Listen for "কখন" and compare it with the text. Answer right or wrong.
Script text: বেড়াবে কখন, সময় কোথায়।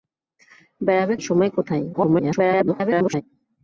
wrong